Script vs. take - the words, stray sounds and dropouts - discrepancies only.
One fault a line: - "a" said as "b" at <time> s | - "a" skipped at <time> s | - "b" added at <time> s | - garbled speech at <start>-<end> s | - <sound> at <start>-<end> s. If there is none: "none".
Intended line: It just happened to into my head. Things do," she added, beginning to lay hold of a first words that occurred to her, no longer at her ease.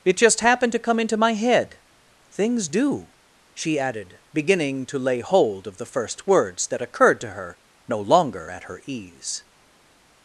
- "come" added at 0.8 s
- "a" said as "the" at 5.8 s